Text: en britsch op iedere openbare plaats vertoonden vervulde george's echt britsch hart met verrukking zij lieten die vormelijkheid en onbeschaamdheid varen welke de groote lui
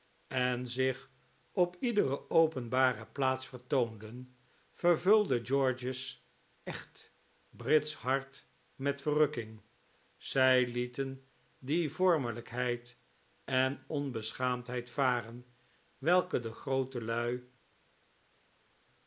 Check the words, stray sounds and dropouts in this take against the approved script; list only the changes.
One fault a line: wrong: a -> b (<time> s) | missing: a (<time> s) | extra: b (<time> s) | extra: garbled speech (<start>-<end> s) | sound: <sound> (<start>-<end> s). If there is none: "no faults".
wrong: britsch -> zich (0.7 s)